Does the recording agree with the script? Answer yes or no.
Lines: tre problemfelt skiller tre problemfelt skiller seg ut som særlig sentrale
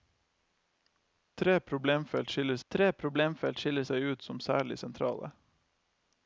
yes